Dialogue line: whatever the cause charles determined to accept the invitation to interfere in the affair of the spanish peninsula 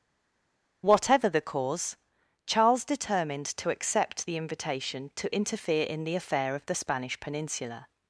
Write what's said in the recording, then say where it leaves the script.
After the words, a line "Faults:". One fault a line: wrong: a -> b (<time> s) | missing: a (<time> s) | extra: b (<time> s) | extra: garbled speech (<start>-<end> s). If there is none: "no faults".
whatever the cause charles determined to accept the invitation to interfere in the affair of the spanish peninsula
Faults:
no faults